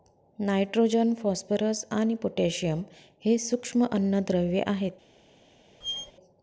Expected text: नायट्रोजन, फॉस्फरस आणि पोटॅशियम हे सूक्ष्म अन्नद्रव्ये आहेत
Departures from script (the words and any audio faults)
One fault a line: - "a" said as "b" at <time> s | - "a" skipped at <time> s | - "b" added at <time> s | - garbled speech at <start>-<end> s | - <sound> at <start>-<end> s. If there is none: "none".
- squeak at 5.8-6.1 s